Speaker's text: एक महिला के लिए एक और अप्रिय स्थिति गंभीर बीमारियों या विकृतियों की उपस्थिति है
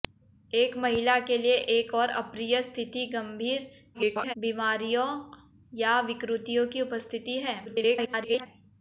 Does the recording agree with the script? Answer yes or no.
no